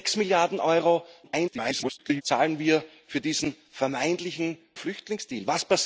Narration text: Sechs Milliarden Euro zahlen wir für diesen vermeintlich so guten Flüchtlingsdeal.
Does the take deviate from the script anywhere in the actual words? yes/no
yes